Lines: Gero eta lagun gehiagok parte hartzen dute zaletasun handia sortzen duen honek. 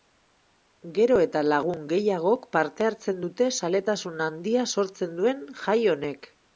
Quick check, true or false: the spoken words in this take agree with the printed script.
false